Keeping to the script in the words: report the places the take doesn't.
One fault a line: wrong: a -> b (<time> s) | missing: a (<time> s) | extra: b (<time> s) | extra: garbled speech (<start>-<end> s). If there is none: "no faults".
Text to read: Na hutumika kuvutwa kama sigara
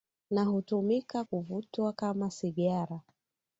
no faults